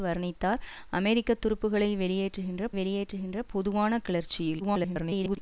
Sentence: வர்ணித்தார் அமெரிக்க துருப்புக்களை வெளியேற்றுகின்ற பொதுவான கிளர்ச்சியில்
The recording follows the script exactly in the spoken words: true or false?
false